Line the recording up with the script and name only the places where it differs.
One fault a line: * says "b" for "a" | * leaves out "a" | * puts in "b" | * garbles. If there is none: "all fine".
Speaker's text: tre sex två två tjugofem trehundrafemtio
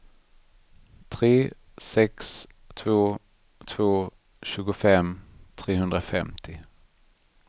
all fine